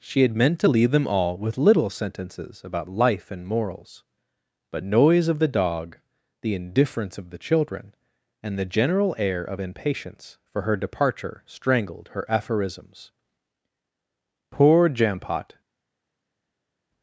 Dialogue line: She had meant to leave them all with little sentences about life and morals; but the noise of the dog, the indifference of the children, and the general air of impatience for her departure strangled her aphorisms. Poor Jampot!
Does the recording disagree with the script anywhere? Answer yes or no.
yes